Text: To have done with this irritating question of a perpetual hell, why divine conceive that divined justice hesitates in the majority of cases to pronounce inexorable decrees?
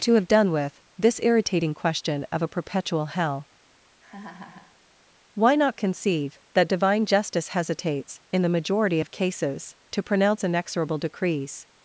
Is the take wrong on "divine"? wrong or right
wrong